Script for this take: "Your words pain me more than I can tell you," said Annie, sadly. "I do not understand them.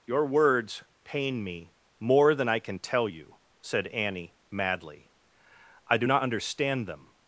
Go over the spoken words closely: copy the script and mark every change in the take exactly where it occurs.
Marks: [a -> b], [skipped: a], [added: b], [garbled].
"Your words pain me more than I can tell you," said Annie, [sadly. -> madly] "I do not understand them.